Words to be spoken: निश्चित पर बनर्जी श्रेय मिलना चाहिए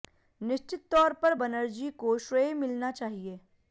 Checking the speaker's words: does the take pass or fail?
fail